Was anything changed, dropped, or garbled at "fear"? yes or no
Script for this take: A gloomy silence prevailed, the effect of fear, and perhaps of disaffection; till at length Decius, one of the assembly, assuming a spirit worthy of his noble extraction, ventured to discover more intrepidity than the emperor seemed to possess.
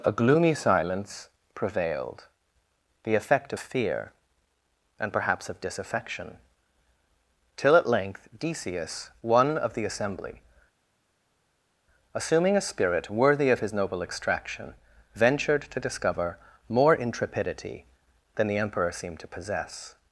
no